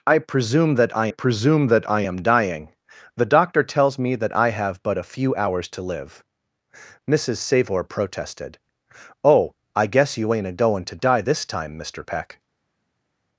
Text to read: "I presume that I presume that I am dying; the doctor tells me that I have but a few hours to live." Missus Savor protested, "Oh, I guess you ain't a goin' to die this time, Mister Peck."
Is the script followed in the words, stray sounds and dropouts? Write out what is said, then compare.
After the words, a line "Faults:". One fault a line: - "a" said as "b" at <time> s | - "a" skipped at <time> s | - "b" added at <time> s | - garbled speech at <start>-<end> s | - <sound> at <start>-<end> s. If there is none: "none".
"I presume that I presume that I am dying; the doctor tells me that I have but a few hours to live." Missus Savor protested, "Oh, I guess you ain't a goin' to die this time, Mister Peck."
Faults:
none